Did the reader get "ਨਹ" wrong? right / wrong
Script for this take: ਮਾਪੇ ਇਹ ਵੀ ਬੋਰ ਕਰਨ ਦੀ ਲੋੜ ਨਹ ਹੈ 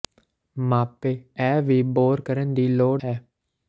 wrong